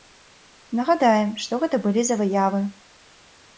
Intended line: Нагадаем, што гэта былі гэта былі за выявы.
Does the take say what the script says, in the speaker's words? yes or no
no